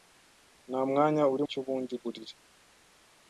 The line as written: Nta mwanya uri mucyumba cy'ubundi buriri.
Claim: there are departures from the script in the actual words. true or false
true